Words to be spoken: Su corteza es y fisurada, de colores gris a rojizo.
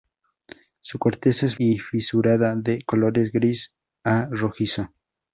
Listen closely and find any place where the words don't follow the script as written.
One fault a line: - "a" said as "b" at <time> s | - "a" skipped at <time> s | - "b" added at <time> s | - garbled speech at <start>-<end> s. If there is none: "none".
none